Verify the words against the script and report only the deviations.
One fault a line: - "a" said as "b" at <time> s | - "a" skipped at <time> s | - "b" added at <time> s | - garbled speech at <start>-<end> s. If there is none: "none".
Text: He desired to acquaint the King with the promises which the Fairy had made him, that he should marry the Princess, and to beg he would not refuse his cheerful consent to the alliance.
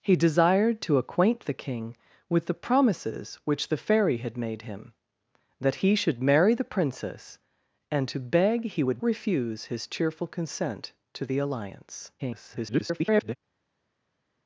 - "not" skipped at 9.0 s
- garbled speech at 12.2-13.4 s